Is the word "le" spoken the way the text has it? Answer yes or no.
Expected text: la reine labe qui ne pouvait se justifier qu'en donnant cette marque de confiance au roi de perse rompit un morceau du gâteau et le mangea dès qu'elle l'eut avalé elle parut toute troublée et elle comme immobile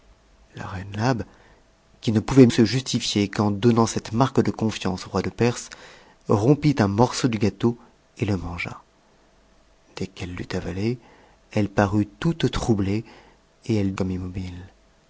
yes